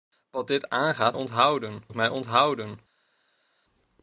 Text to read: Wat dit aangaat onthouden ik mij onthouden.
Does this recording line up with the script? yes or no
yes